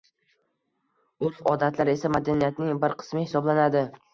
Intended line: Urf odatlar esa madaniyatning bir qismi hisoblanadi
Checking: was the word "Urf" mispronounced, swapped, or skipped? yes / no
no